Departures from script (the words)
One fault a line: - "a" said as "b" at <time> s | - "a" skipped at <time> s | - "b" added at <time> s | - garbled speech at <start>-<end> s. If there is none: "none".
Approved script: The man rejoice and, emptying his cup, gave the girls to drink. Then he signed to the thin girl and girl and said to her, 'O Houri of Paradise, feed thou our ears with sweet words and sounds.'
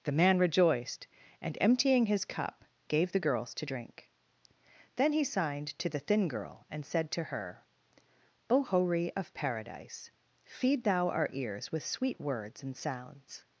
- "rejoice" said as "rejoiced" at 0.4 s
- "girl and" skipped at 6.8 s